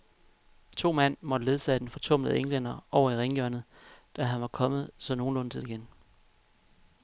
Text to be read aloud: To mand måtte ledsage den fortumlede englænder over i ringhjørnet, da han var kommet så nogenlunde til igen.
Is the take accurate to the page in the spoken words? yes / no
yes